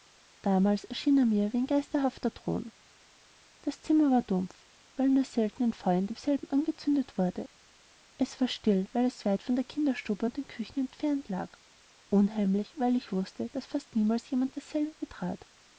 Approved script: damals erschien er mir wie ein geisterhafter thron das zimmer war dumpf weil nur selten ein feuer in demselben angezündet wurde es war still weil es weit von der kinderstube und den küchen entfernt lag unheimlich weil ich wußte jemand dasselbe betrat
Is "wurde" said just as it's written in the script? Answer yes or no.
yes